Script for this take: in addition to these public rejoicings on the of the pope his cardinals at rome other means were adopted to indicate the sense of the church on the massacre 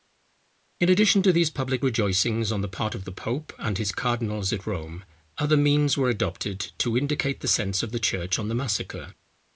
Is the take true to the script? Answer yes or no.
no